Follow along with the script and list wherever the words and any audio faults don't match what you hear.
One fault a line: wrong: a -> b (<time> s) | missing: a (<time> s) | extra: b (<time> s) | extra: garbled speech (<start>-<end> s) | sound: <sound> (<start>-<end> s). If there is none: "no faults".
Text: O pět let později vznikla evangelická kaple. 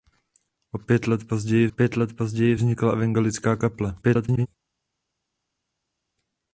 extra: pět let později (1.7 s)
extra: garbled speech (4.0-4.5 s)